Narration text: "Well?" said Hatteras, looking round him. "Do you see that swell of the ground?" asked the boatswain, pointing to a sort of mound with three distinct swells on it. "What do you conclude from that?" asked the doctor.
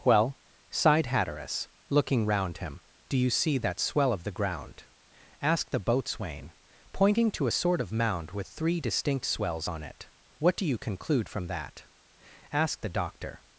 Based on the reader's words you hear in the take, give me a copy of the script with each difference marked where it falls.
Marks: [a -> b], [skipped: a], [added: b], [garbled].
"Well?" [said -> sighed] Hatteras, looking round him. "Do you see that swell of the ground?" asked the boatswain, pointing to a sort of mound with three distinct swells on it. "What do you conclude from that?" asked the doctor.